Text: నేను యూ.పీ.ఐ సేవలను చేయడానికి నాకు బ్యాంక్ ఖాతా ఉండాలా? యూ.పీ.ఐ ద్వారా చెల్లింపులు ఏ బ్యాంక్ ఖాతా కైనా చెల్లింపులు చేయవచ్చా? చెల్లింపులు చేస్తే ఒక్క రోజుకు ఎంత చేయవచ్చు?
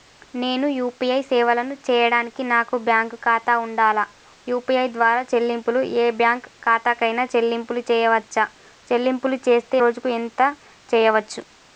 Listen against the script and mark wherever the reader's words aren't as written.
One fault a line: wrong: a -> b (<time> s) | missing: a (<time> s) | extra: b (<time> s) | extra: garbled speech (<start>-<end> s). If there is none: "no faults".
missing: ఒక్క (9.8 s)